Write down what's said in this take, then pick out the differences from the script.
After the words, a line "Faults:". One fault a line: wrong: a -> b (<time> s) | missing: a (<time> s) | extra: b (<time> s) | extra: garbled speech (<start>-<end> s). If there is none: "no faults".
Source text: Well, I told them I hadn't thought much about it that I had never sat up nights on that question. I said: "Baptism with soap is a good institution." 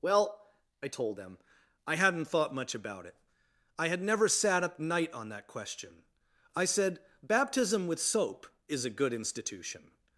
Well, I told them I hadn't thought much about it I had never sat up night on that question. I said: "Baptism with soap is a good institution."
Faults:
missing: that (3.1 s)
wrong: nights -> night (4.8 s)